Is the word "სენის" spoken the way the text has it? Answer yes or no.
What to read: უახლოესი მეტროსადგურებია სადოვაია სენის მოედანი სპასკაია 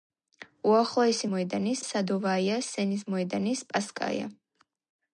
yes